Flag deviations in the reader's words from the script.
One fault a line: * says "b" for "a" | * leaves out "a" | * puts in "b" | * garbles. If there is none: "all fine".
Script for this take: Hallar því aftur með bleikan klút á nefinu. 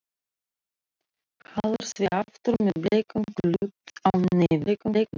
* garbles